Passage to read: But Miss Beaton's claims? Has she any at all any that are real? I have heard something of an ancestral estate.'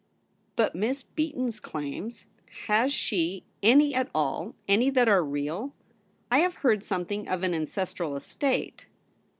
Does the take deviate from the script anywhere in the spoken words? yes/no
no